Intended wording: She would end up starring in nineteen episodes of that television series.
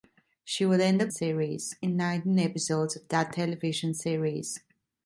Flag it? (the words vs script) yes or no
yes